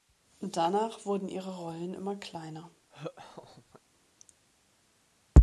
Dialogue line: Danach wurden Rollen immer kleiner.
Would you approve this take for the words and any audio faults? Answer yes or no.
no